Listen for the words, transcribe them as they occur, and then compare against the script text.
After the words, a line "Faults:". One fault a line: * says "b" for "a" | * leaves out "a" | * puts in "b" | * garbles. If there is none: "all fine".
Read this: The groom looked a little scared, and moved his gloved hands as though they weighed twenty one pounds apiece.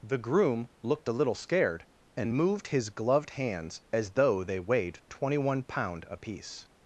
The groom looked a little scared, and moved his gloved hands as though they weighed twenty one pound apiece.
Faults:
* says "pound" for "pounds"